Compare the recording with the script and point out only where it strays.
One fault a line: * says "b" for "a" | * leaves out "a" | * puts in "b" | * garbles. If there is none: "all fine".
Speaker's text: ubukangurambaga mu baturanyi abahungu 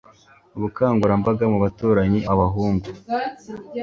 all fine